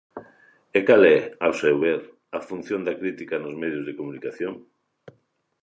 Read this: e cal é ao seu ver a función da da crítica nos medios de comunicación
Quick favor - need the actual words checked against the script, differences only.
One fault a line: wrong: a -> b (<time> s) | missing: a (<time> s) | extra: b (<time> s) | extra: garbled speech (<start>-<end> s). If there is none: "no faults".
missing: da (3.0 s)